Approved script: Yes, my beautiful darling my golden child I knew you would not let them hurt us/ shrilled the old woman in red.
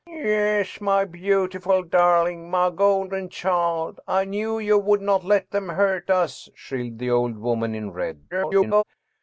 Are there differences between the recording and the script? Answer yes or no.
yes